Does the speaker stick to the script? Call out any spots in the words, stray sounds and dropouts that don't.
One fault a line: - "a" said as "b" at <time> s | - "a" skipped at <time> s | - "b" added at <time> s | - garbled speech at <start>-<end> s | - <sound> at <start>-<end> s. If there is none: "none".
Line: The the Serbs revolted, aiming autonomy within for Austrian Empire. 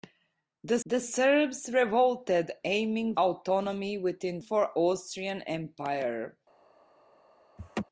- laugh at 7.6-7.8 s